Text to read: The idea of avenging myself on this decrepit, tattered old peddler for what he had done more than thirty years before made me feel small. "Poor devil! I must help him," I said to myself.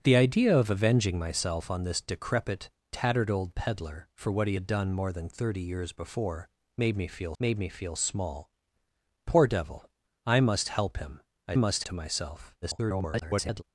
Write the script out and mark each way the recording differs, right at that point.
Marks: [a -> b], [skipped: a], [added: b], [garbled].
The idea of avenging myself on this decrepit, tattered old peddler for what he had done more than thirty years before made me feel [added: made me feel] small. "Poor devil! I must help him," I [said -> must] to myself. [garbled]